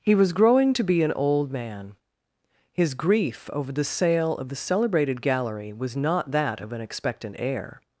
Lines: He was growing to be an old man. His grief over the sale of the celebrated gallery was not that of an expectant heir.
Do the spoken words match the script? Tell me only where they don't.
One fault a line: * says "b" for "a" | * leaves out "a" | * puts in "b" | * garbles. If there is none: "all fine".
all fine